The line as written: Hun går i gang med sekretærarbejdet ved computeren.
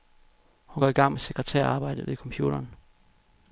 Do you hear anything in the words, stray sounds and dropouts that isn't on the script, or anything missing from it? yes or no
no